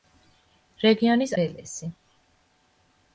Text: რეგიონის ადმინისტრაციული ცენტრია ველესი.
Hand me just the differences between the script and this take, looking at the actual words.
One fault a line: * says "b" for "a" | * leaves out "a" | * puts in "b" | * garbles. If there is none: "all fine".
* leaves out "ადმინისტრაციული ცენტრია"